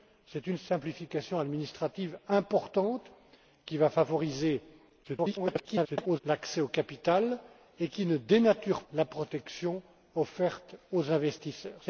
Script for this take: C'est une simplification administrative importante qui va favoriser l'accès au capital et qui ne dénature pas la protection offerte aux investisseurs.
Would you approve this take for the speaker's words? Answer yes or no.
no